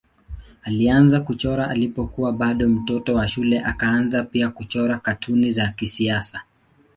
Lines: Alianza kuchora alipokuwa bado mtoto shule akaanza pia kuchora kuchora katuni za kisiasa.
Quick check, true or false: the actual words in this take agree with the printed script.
false